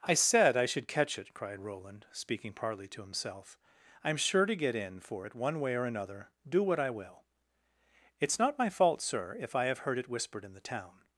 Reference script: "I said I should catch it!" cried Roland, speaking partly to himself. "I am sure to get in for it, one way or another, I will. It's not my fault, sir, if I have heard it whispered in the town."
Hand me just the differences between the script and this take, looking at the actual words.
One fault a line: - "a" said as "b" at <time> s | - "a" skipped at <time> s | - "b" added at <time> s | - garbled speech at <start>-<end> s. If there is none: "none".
- "do what" added at 6.5 s